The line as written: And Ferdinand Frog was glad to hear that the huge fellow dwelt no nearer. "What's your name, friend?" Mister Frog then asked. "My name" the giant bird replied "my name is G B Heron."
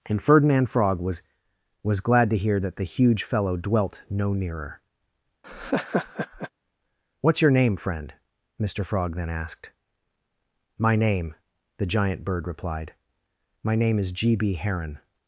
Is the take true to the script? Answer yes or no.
no